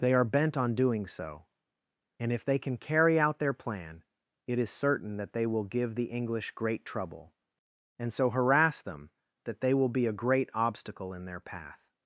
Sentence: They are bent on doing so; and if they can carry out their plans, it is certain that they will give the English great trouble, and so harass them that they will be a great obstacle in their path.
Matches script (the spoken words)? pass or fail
fail